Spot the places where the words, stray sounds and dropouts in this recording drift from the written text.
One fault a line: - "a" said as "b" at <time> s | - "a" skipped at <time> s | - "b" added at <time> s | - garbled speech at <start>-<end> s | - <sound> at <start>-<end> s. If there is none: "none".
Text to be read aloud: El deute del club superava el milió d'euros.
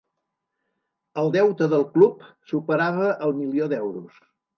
none